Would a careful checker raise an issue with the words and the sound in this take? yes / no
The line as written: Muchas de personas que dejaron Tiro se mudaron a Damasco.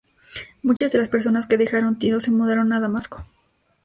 yes